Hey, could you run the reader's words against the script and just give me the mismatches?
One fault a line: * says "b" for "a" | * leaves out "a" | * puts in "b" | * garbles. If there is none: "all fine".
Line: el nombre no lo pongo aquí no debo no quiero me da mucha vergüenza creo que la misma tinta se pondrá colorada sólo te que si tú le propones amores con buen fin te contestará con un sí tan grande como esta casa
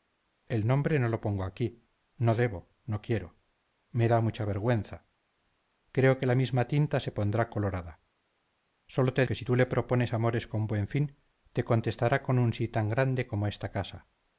all fine